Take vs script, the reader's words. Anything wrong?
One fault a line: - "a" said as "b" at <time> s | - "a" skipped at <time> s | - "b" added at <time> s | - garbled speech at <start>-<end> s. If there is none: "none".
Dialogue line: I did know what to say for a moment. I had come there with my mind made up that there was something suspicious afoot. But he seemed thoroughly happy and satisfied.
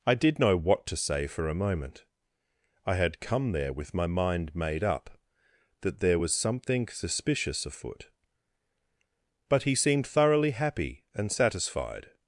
none